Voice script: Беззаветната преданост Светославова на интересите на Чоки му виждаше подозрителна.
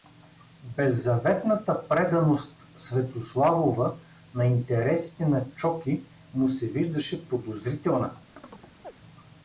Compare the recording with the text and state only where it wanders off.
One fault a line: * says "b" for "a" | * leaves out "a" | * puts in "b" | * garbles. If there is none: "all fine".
* puts in "се"